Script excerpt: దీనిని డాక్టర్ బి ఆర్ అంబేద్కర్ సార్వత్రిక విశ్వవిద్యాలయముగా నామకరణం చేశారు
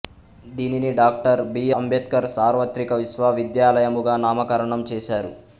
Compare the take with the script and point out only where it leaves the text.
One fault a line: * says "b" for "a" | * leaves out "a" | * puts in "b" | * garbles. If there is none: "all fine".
* leaves out "ఆర్"